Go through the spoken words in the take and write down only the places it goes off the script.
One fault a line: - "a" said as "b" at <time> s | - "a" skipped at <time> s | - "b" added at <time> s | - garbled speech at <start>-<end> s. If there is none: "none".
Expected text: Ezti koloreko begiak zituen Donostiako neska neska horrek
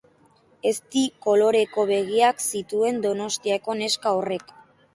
- "neska" skipped at 4.2 s